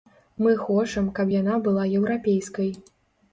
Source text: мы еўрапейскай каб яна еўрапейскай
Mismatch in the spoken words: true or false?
true